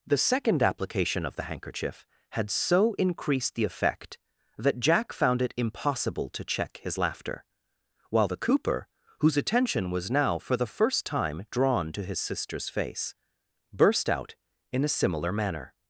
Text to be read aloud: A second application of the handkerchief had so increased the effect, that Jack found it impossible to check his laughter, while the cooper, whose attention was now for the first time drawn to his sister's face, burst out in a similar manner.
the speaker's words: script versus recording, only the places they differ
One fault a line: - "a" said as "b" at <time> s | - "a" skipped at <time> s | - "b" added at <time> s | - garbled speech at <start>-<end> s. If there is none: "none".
- "A" said as "The" at 0.1 s